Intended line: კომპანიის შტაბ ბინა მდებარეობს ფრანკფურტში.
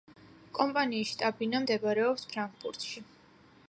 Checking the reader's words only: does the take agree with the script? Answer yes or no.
yes